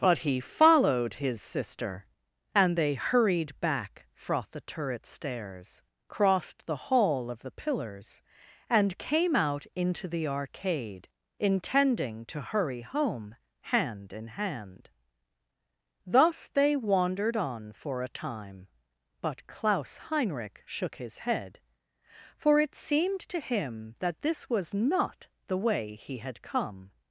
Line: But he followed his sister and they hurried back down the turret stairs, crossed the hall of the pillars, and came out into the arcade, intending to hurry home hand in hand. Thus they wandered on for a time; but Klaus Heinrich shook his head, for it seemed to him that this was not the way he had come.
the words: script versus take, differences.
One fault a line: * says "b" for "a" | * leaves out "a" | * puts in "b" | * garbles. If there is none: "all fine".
* says "froth" for "down"